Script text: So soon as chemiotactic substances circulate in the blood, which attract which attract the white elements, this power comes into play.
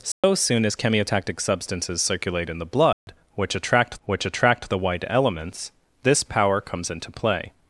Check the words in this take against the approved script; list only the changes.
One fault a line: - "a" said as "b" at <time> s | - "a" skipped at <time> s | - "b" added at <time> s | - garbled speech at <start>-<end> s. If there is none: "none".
none